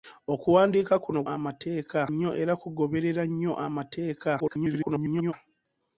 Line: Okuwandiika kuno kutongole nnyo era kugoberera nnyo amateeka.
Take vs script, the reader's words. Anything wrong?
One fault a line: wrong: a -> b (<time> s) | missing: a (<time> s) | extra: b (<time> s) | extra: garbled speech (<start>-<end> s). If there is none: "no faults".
wrong: kutongole -> amateeka (1.3 s)
extra: garbled speech (4.4-5.3 s)